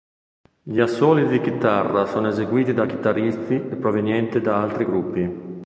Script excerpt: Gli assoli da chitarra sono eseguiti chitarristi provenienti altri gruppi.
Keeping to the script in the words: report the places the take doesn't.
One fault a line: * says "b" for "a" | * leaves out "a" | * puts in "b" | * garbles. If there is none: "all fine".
* says "di" for "da"
* puts in "da"
* puts in "da"